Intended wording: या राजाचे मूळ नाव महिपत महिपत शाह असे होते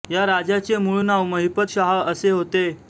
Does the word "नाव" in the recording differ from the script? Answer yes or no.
no